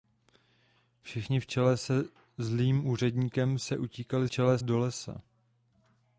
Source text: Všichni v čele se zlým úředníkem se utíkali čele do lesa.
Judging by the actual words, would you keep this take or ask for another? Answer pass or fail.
pass